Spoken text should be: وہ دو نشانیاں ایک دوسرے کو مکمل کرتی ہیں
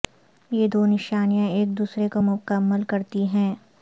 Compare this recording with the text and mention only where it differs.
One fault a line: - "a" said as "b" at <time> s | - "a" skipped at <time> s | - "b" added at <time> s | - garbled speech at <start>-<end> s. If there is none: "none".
- "وہ" said as "یہ" at 0.5 s